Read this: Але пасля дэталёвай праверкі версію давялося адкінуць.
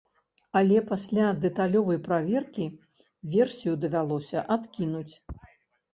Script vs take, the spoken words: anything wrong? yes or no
no